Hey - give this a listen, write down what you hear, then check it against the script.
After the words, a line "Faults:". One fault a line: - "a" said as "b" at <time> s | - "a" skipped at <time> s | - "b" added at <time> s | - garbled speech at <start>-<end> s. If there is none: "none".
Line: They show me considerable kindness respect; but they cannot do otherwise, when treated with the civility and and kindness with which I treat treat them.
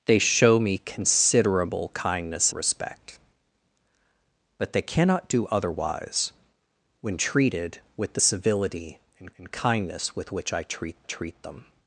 They show me considerable kindness respect; but they cannot do otherwise, when treated with the civility and and kindness with which I treat treat them.
Faults:
none